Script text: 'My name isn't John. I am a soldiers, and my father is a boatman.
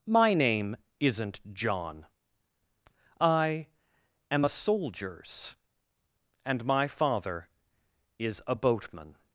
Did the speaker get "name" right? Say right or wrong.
right